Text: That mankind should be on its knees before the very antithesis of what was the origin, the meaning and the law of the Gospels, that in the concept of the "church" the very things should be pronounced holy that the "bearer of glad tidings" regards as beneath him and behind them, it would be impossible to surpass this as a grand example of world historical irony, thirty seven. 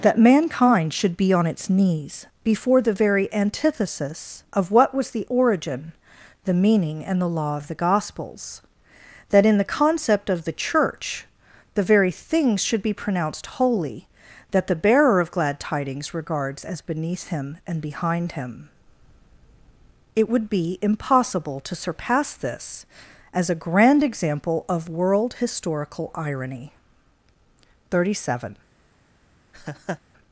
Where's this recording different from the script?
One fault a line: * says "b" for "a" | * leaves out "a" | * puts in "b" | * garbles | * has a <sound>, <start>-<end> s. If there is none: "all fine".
* says "him" for "them"
* has a laugh, 29.5-30.0 s